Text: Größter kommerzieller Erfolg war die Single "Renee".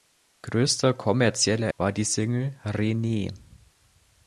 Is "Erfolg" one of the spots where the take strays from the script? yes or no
yes